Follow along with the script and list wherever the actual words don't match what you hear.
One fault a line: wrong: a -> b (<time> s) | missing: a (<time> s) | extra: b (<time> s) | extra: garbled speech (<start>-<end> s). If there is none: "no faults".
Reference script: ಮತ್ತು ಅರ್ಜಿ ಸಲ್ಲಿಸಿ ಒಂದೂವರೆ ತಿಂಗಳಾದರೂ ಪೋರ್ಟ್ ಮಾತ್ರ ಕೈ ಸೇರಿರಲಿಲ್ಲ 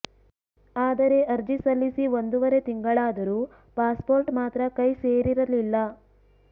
wrong: ಮತ್ತು -> ಆದರೆ (0.8 s)
extra: ಪಾಸ್ (3.8 s)